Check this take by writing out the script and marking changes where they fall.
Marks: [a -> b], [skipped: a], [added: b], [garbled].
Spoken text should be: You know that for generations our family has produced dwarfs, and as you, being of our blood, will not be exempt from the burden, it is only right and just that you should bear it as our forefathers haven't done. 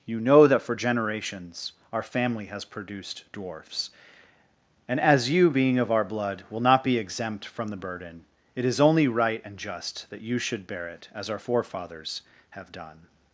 You know that for generations our family has produced dwarfs, and as you, being of our blood, will not be exempt from the burden, it is only right and just that you should bear it as our forefathers [haven't -> have] done.